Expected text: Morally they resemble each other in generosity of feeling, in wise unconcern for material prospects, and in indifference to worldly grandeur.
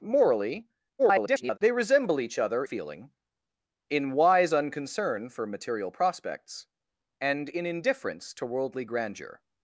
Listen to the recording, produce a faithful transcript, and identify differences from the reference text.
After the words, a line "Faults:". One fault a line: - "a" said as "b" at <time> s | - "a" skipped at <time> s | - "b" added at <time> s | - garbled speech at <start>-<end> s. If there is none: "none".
Morally [garbled] they resemble each other feeling, in wise unconcern for material prospects, and in indifference to worldly grandeur.
Faults:
- garbled speech at 1.0-1.6 s
- "in generosity of" skipped at 2.6 s